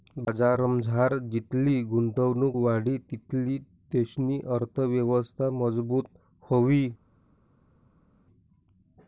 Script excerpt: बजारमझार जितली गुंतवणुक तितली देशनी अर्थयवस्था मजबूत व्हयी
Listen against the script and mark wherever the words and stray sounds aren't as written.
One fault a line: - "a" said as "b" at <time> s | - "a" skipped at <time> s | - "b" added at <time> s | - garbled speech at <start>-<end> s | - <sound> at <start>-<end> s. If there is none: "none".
- "वाढी" added at 2.6 s